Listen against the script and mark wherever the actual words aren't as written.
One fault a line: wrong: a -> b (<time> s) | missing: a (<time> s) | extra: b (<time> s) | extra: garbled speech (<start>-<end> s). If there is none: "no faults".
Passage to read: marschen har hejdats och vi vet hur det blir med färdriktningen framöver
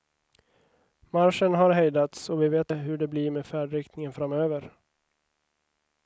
no faults